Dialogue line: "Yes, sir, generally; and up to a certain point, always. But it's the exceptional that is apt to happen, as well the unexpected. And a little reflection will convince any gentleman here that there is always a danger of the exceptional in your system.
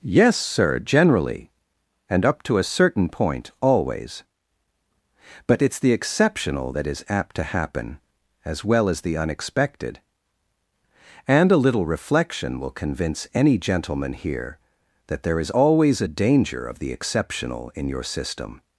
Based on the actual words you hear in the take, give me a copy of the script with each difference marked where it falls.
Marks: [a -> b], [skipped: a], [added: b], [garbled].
"Yes, sir, generally; and up to a certain point, always. But it's the exceptional that is apt to happen, as well [added: as] the unexpected. And a little reflection will convince any gentleman here that there is always a danger of the exceptional in your system.